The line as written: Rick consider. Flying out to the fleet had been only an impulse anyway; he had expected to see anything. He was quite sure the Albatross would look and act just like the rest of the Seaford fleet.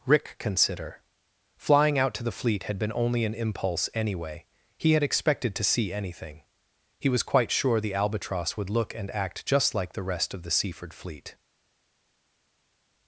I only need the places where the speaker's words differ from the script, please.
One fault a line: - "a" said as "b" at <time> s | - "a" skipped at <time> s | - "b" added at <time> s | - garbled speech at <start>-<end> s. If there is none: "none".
none